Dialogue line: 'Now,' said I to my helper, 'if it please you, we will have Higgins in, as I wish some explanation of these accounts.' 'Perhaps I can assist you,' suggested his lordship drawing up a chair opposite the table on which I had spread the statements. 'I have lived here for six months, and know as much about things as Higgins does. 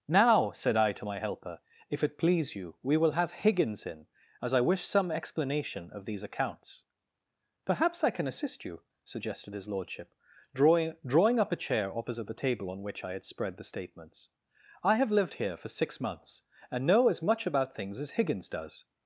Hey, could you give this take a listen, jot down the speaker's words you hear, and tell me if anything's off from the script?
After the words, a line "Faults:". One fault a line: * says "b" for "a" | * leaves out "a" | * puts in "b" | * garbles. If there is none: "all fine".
'Now,' said I to my helper, 'if it please you, we will have Higgins in, as I wish some explanation of these accounts.' 'Perhaps I can assist you,' suggested his lordship drawing drawing up a chair opposite the table on which I had spread the statements. 'I have lived here for six months, and know as much about things as Higgins does.
Faults:
* puts in "drawing"